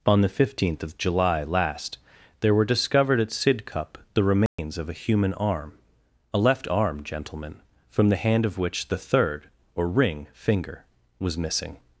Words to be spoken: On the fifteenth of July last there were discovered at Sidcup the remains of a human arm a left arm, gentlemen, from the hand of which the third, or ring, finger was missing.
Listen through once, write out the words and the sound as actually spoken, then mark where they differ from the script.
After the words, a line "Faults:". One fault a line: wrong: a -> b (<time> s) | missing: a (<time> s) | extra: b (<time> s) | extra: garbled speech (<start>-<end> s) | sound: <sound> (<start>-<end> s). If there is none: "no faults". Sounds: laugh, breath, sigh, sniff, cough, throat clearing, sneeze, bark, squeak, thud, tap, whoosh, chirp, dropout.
On the fifteenth of July last there were discovered at Sidcup the remains of a human arm a left arm, gentlemen, from the hand of which the third, or ring, finger was missing.
Faults:
sound: dropout (4.5-4.6 s)